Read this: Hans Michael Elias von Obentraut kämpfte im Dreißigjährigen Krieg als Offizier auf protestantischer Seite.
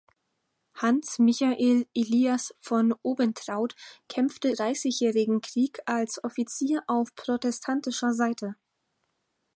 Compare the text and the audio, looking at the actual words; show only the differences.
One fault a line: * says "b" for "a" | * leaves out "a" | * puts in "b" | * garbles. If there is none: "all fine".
* leaves out "im"